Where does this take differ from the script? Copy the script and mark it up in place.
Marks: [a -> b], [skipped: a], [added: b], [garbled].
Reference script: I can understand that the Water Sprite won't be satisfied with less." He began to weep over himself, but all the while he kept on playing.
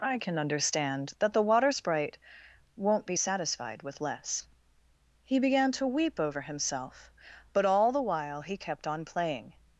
I can understand that the Water Sprite won't be satisfied with less." He began to weep over himself, but all the while he kept on playing.